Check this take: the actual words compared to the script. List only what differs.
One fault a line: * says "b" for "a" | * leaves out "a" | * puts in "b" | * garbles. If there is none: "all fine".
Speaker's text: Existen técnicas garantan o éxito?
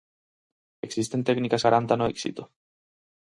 all fine